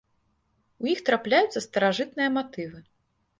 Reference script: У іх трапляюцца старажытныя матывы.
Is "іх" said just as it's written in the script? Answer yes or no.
yes